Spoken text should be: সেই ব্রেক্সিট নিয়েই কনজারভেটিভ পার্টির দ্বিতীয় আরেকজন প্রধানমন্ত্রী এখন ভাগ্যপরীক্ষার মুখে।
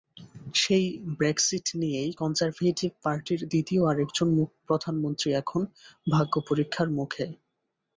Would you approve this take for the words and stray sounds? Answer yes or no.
yes